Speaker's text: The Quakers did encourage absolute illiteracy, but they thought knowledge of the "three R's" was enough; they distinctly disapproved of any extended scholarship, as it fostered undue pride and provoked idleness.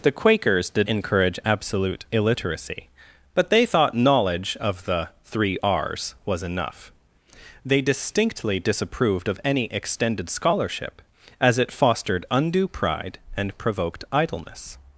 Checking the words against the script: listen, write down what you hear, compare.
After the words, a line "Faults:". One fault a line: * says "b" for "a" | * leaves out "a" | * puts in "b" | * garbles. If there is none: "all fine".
The Quakers did encourage absolute illiteracy, but they thought knowledge of the "three R's" was enough; they distinctly disapproved of any extended scholarship, as it fostered undue pride and provoked idleness.
Faults:
all fine